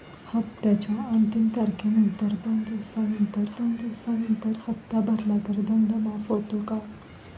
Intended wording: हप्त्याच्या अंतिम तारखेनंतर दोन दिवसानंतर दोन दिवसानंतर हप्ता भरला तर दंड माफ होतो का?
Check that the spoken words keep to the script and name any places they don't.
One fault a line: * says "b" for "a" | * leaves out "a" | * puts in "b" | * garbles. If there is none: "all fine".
all fine